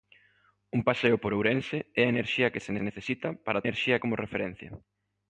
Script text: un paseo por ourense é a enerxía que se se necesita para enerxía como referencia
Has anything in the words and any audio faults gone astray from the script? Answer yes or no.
no